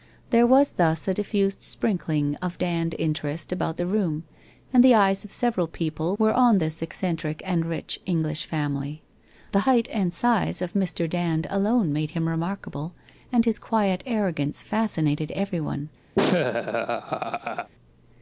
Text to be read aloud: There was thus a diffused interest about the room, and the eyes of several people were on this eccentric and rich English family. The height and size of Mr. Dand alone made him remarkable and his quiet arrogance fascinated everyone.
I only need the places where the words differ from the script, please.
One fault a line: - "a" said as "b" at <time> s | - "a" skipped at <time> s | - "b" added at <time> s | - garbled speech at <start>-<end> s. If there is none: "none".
- "sprinkling of Dand" added at 1.6 s